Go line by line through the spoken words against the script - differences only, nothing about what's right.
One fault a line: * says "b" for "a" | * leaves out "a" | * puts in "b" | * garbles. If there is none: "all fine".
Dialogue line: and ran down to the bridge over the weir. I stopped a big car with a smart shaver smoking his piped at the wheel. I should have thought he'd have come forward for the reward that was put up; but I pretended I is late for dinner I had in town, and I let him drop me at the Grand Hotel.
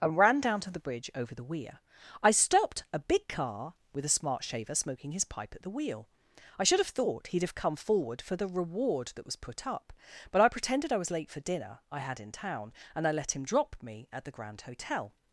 * says "pipe" for "piped"
* says "was" for "is"